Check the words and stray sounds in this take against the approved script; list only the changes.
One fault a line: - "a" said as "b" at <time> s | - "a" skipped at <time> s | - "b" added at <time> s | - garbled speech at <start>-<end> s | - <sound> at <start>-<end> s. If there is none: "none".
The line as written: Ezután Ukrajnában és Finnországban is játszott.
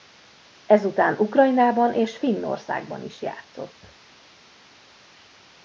none